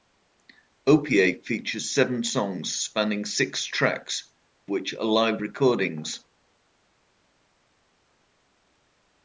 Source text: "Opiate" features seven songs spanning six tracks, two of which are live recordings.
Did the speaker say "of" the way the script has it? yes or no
no